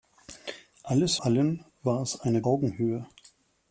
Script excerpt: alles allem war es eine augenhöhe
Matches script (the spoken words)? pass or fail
pass